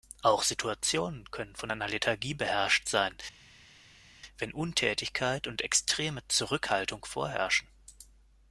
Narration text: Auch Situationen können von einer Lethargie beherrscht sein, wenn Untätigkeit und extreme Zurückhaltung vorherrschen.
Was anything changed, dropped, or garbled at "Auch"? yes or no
no